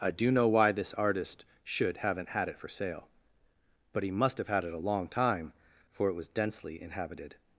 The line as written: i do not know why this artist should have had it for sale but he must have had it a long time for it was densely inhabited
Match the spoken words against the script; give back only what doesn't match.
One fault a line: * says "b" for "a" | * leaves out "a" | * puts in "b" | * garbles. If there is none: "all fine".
* leaves out "not"
* says "haven't" for "have"